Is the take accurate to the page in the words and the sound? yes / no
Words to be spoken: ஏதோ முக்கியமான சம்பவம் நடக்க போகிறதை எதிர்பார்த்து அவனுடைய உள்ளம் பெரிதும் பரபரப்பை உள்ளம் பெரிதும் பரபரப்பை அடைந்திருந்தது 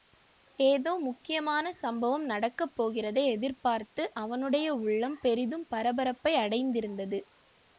no